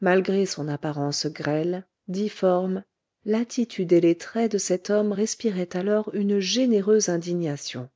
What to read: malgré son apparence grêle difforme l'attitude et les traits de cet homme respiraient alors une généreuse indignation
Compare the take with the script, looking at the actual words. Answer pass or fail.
pass